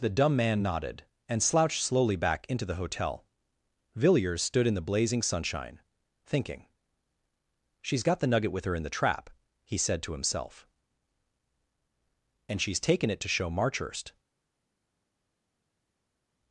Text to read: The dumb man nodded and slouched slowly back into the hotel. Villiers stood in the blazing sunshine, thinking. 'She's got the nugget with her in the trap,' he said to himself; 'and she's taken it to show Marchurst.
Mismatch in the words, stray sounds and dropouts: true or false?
false